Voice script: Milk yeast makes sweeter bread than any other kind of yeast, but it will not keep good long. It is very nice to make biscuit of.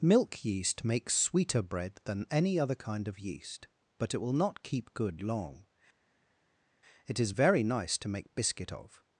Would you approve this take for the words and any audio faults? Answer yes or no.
yes